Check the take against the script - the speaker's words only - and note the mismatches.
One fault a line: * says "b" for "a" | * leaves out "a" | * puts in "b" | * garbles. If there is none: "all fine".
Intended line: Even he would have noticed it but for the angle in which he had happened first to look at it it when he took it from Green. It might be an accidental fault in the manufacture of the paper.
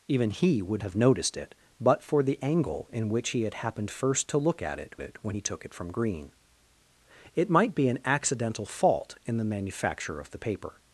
all fine